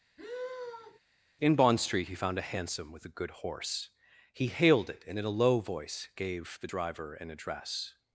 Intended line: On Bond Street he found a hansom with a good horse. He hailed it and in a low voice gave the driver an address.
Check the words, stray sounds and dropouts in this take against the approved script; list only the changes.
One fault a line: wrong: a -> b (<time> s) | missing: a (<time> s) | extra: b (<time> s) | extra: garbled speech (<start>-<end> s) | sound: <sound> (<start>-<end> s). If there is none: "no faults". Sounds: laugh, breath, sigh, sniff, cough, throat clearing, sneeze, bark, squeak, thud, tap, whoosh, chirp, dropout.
sound: sigh (0.2-1.0 s)
wrong: On -> In (1.4 s)